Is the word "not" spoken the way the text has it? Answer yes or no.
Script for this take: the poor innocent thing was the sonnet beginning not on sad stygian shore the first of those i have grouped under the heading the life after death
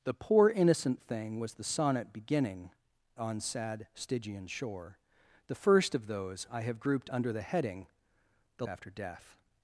no